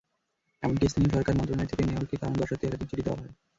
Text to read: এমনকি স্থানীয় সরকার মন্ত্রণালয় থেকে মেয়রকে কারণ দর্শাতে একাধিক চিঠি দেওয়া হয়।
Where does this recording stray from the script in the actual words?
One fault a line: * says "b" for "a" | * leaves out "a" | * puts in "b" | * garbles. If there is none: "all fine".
all fine